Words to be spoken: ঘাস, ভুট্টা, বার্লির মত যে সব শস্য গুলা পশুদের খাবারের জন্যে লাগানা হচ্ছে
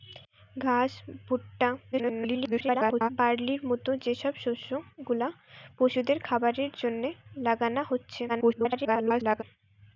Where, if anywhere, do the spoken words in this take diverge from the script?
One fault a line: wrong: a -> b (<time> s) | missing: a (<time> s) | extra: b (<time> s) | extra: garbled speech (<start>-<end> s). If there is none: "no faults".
extra: garbled speech (1.9-3.1 s)
extra: garbled speech (8.3-9.4 s)